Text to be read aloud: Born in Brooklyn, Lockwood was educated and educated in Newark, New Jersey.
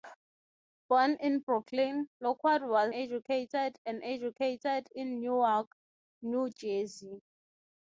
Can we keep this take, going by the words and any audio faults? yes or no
yes